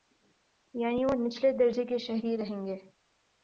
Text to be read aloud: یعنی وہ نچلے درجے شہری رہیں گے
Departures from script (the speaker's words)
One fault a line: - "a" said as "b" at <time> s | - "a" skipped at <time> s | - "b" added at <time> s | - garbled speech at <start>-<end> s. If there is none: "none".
- "کے" added at 1.9 s